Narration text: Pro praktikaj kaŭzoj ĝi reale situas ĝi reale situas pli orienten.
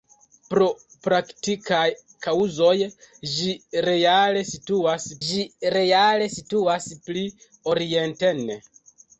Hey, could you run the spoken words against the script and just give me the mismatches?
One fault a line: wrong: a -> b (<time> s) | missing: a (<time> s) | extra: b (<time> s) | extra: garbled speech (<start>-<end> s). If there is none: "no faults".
no faults